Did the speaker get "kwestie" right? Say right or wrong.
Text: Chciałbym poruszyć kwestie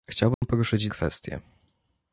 right